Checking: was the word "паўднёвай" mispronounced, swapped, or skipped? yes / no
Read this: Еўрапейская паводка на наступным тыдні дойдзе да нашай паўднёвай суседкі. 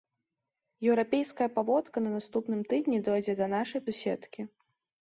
yes